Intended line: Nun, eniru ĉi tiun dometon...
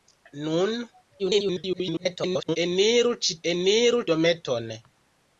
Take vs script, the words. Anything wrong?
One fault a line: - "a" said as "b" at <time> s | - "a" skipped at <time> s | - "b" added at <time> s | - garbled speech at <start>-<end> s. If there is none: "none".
- garbled speech at 1.2-2.6 s
- "tiun" said as "eniru" at 3.5 s